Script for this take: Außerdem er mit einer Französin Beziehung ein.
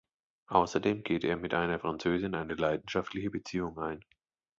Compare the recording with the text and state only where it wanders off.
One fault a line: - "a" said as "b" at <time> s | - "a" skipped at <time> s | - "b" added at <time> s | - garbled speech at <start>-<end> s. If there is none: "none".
- "geht" added at 1.0 s
- "eine leidenschaftliche" added at 2.3 s